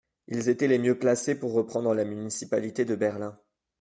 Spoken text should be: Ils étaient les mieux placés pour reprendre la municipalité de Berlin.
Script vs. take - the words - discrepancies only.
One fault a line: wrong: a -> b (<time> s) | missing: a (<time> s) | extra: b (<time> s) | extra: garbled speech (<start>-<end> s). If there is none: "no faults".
no faults